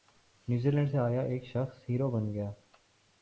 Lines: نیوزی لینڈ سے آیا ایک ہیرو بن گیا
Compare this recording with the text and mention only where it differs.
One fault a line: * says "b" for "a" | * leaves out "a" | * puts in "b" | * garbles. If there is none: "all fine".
* puts in "شخص"